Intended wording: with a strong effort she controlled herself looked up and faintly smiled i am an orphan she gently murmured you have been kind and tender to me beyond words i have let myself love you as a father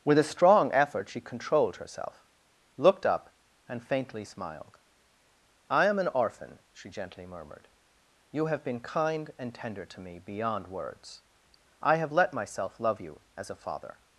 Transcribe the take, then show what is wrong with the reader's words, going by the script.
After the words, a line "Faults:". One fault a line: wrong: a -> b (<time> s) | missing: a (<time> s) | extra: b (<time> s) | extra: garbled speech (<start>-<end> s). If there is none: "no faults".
with a strong effort she controlled herself looked up and faintly smiled i am an orphan she gently murmured you have been kind and tender to me beyond words i have let myself love you as a father
Faults:
no faults